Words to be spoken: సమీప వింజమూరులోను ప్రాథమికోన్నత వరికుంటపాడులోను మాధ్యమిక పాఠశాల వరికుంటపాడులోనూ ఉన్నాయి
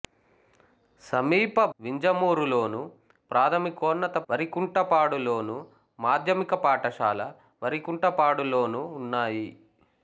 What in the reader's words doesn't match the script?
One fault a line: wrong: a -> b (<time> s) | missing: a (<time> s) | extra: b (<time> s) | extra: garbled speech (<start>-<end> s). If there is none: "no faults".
no faults